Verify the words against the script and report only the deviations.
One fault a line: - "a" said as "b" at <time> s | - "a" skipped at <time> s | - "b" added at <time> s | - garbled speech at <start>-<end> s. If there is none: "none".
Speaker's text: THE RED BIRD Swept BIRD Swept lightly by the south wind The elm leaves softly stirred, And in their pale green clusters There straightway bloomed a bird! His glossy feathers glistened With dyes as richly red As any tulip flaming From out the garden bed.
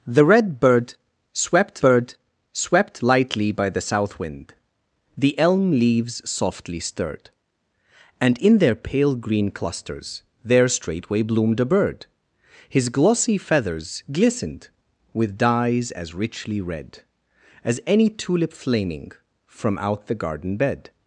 none